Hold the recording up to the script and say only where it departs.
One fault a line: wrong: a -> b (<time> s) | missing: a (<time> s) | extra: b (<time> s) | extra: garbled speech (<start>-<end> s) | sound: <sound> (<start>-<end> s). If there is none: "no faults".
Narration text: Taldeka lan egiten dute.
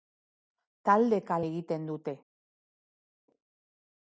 missing: lan (1.4 s)